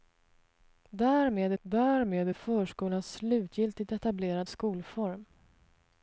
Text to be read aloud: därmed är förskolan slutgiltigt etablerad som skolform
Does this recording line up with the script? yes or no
no